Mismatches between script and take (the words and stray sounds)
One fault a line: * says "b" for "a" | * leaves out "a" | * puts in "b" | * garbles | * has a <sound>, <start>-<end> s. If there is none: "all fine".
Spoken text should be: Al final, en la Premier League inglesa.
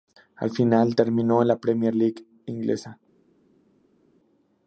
* puts in "terminó"